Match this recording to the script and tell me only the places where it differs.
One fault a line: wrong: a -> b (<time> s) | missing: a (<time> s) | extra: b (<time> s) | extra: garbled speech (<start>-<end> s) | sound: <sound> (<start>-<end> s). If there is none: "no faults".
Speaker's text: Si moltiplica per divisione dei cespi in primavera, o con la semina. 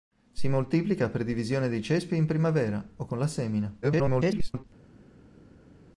extra: garbled speech (3.8-4.6 s)